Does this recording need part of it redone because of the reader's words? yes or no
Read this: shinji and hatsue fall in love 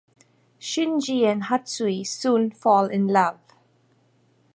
yes